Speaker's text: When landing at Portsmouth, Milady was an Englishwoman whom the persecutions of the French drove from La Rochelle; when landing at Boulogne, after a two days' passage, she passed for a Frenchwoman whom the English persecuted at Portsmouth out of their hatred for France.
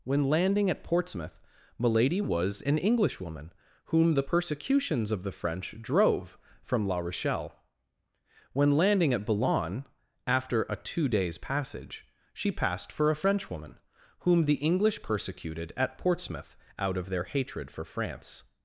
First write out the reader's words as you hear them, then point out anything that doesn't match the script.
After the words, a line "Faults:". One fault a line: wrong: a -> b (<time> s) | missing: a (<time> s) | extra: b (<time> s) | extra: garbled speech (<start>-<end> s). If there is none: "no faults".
When landing at Portsmouth, Milady was an Englishwoman whom the persecutions of the French drove from La Rochelle; when landing at Boulogne, after a two days' passage, she passed for a Frenchwoman whom the English persecuted at Portsmouth out of their hatred for France.
Faults:
no faults